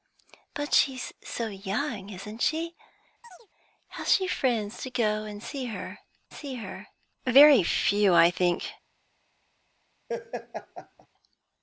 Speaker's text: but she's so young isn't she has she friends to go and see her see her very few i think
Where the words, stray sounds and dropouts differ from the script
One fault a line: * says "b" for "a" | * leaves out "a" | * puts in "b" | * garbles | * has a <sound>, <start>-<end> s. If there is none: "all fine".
* has a chirp, 3.2-3.5 s
* has a laugh, 10.1-11.1 s